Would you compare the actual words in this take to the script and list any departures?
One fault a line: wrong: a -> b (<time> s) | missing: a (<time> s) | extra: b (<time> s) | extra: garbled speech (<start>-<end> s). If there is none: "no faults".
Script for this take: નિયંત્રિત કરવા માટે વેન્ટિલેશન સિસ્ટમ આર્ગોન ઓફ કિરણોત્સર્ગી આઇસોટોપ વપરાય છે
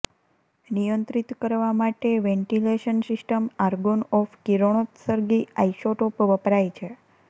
no faults